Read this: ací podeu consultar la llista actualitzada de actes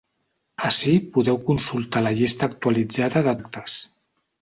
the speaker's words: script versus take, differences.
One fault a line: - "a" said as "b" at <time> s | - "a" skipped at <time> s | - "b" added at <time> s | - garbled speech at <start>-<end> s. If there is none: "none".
none